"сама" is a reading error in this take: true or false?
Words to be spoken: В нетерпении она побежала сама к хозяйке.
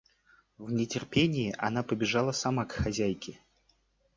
false